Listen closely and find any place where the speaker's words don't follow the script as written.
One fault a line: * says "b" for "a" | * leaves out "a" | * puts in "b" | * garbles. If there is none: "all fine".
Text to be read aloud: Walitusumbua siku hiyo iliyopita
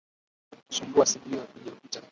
all fine